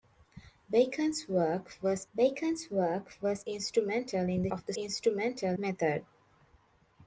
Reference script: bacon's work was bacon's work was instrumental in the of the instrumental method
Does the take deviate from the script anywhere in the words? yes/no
no